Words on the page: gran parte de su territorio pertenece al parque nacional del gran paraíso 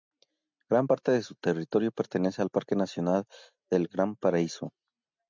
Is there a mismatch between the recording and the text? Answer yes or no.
no